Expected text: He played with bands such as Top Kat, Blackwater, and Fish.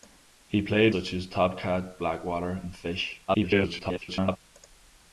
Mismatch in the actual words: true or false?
true